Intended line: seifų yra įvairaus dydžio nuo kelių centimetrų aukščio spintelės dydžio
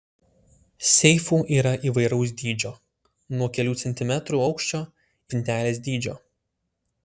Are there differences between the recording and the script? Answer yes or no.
no